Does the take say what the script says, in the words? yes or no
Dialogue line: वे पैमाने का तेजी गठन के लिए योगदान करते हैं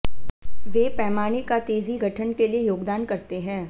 yes